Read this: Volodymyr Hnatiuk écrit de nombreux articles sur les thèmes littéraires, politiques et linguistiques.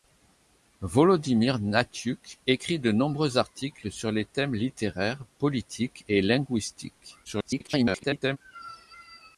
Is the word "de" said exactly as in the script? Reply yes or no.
yes